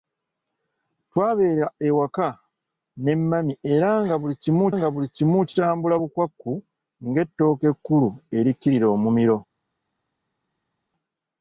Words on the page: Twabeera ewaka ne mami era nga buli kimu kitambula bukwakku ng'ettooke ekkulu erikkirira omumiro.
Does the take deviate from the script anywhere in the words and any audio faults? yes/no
yes